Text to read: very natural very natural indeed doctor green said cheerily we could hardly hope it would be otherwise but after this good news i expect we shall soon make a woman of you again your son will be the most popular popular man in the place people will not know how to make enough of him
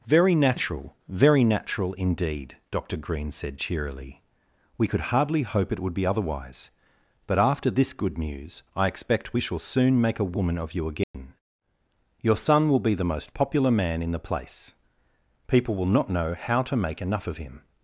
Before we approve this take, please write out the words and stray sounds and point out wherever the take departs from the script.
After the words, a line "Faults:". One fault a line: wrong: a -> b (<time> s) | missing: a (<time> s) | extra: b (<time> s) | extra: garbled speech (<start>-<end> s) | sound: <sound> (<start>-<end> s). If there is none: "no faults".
very natural very natural indeed doctor green said cheerily we could hardly hope it would be otherwise but after this good news i expect we shall soon make a woman of you again your son will be the most popular man in the place people will not know how to make enough of him
Faults:
sound: dropout (11.0-11.1 s)
missing: popular (13.7 s)